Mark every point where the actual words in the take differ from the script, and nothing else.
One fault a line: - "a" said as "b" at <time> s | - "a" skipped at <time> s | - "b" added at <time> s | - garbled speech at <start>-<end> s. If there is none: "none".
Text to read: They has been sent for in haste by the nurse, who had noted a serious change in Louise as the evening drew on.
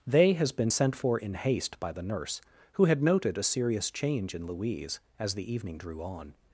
none